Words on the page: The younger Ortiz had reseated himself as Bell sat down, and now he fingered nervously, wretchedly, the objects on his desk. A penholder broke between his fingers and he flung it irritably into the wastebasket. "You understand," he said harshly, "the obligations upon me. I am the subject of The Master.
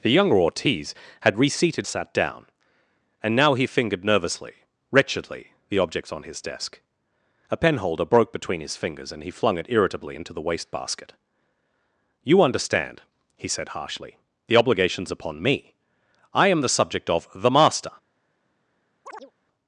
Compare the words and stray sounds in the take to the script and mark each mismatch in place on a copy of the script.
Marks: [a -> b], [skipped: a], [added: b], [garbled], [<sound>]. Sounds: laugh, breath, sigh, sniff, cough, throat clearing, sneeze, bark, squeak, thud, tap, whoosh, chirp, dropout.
The younger Ortiz had reseated [skipped: himself as Bell] sat down, and now he fingered nervously, wretchedly, the objects on his desk. A penholder broke between his fingers and he flung it irritably into the wastebasket. "You understand," he said harshly, "the obligations upon me. I am the subject of The Master. [chirp]